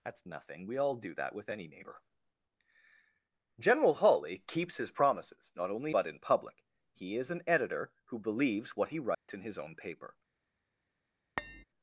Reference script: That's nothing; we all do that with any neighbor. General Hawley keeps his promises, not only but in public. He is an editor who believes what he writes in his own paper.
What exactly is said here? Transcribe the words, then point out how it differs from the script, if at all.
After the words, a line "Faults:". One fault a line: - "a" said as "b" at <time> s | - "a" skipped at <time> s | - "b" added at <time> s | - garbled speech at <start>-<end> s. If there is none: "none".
That's nothing; we all do that with any neighbor. General Hawley keeps his promises, not only but in public. He is an editor who believes what he writes in his own paper.
Faults:
none